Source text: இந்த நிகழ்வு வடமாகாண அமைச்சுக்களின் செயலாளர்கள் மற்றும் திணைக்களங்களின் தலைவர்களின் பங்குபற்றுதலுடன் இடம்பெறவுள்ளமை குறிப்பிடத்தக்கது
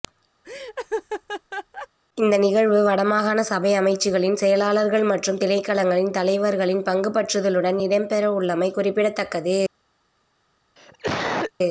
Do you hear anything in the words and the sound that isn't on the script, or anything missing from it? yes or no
yes